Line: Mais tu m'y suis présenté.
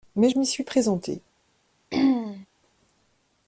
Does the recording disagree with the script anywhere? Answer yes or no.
yes